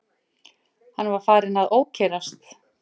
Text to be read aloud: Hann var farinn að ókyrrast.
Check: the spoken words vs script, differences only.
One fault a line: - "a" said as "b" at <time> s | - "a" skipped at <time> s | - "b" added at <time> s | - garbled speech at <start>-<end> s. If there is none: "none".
none